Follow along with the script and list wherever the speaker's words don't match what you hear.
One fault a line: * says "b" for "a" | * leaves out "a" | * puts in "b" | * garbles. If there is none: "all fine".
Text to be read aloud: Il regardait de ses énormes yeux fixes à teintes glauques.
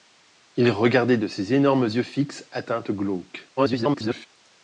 * garbles